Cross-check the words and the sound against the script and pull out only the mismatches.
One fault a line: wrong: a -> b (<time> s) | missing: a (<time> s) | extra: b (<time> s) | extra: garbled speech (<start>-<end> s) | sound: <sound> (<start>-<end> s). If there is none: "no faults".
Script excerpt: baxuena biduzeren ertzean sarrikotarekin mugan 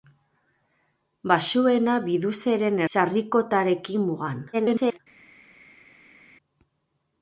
missing: ertzean (2.8 s)
extra: garbled speech (4.5-5.0 s)